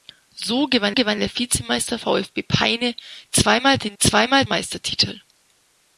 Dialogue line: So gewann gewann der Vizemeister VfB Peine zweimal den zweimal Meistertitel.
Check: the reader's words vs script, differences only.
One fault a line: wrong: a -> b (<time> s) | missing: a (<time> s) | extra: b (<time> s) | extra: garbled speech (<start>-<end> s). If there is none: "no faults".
no faults